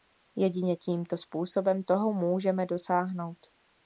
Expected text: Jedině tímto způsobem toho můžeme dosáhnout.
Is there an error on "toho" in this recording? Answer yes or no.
no